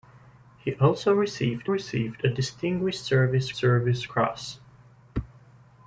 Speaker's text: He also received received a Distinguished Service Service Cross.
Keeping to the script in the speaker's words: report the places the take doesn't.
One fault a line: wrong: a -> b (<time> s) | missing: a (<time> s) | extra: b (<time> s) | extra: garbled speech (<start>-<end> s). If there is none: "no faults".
no faults